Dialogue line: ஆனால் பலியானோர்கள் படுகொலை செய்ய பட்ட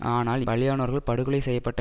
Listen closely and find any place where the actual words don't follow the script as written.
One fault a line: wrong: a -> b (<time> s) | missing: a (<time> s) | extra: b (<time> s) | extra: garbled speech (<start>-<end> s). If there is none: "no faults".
no faults